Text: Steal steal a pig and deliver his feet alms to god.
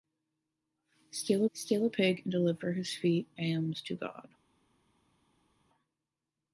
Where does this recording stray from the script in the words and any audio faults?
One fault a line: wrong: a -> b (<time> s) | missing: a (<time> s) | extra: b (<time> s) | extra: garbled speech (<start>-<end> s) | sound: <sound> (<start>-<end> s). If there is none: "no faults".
no faults